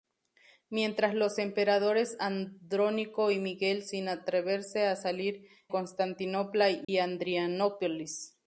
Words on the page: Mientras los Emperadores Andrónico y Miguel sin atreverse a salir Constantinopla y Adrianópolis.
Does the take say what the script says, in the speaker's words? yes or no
yes